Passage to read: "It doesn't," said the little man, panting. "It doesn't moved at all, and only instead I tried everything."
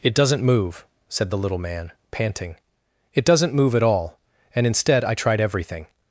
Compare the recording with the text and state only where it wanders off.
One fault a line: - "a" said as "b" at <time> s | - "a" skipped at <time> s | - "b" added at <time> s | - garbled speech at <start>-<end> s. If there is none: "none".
- "move" added at 0.4 s
- "moved" said as "move" at 3.5 s
- "only" skipped at 4.7 s